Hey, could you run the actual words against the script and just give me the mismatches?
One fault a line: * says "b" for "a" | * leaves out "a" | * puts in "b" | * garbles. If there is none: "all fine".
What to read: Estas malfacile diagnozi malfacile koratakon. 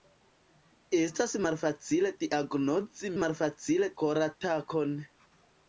all fine